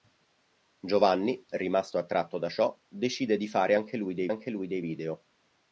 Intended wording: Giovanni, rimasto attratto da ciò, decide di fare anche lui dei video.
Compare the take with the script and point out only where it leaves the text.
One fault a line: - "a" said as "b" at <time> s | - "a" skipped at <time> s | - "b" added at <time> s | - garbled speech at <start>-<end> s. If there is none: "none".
- "anche lui dei" added at 4.3 s